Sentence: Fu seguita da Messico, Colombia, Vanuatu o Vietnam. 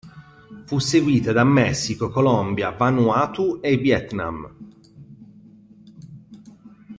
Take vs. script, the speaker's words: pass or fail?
fail